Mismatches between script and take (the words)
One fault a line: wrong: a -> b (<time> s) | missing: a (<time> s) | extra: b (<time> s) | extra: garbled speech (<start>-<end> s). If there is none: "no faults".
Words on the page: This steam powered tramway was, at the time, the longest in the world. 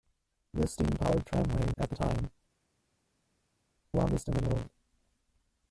missing: was (1.7 s)
missing: the (2.3 s)